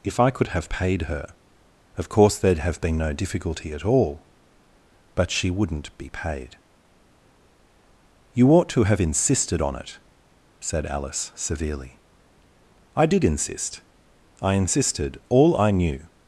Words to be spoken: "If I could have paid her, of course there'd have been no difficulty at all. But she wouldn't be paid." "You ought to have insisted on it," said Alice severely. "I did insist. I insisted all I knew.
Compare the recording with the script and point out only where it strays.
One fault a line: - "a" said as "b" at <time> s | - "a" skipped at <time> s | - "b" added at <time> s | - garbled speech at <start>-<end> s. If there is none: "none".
none